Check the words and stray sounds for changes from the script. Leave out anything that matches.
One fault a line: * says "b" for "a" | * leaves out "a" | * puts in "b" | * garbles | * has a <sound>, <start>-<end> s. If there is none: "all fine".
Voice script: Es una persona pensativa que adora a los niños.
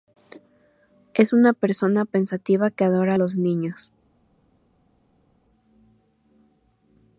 all fine